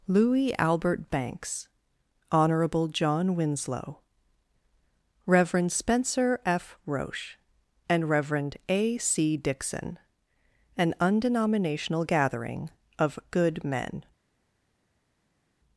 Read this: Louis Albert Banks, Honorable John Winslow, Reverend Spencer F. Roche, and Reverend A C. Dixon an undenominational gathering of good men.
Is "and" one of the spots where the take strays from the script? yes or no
no